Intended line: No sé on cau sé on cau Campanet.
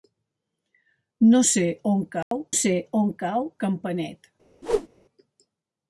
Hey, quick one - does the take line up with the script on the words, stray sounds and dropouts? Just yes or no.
no